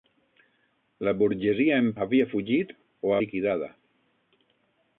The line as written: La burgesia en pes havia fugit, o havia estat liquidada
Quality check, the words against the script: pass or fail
fail